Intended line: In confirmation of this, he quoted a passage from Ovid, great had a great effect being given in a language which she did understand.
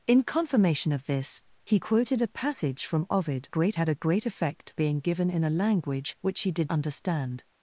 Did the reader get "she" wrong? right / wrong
right